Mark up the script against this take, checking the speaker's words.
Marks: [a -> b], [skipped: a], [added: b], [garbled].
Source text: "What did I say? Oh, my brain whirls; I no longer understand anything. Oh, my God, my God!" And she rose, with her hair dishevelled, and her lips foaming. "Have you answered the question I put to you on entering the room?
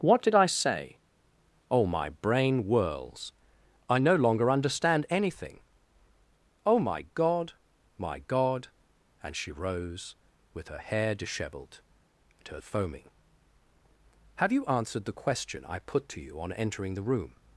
"What did I say? Oh, my brain whirls; I no longer understand anything. Oh, my God, my God!" And she rose, with her hair dishevelled, and her [skipped: lips] foaming. "Have you answered the question I put to you on entering the room?